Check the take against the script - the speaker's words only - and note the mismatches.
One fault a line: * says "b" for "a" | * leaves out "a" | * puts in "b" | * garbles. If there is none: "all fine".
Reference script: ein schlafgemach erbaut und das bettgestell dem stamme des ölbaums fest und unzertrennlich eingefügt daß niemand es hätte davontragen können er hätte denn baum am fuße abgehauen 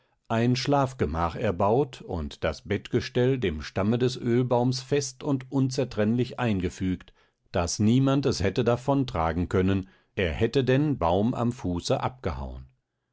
all fine